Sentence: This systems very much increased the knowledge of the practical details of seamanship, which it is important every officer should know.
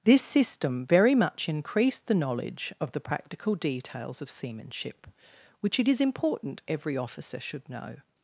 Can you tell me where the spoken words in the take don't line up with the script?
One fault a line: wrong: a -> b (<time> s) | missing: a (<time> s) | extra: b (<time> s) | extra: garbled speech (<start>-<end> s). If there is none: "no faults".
wrong: systems -> system (0.2 s)